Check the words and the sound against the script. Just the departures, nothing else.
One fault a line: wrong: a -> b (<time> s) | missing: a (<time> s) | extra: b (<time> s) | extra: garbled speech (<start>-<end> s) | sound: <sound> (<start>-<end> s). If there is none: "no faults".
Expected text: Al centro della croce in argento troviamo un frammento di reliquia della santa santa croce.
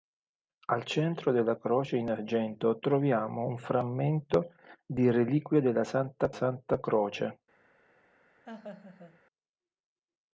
sound: laugh (8.5-9.2 s)